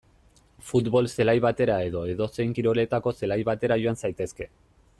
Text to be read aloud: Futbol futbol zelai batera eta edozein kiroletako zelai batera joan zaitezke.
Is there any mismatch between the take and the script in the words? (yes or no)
yes